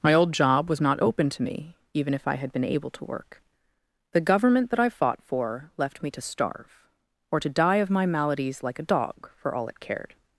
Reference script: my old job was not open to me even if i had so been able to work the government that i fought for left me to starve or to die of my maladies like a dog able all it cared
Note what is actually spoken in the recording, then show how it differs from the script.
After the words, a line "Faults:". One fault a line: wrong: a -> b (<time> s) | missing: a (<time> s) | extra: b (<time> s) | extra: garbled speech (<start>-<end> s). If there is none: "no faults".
my old job was not open to me even if i had been able to work the government that i fought for left me to starve or to die of my maladies like a dog for all it cared
Faults:
missing: so (2.5 s)
wrong: able -> for (9.4 s)